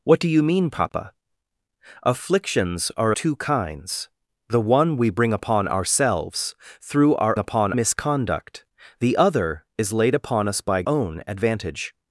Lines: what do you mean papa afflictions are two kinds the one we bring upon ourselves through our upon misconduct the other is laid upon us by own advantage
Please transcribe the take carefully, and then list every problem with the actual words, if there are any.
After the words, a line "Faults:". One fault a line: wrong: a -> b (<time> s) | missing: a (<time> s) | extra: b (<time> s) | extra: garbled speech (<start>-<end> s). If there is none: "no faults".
what do you mean papa afflictions are two kinds the one we bring upon ourselves through our upon misconduct the other is laid upon us by own advantage
Faults:
no faults